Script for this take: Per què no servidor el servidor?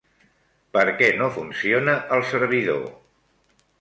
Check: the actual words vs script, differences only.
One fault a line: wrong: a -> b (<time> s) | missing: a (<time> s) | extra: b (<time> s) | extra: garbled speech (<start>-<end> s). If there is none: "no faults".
wrong: servidor -> funciona (1.3 s)